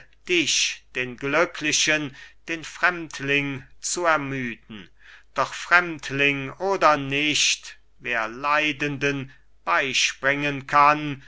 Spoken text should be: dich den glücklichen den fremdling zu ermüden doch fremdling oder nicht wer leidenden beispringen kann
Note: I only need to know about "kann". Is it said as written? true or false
true